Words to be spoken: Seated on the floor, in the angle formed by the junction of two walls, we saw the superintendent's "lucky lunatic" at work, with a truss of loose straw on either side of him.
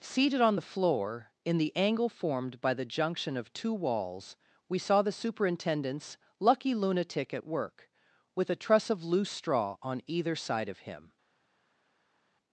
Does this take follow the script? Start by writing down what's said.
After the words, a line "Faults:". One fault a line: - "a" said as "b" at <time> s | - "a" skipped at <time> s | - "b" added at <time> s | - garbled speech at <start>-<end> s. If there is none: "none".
Seated on the floor, in the angle formed by the junction of two walls, we saw the superintendent's "lucky lunatic" at work, with a truss of loose straw on either side of him.
Faults:
none